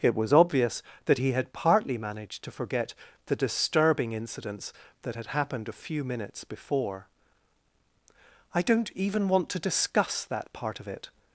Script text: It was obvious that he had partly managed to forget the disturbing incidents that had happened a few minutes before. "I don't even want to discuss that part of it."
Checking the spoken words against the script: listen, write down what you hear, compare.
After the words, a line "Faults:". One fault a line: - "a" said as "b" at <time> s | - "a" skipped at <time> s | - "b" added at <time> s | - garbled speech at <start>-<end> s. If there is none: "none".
It was obvious that he had partly managed to forget the disturbing incidents that had happened a few minutes before. "I don't even want to discuss that part of it."
Faults:
none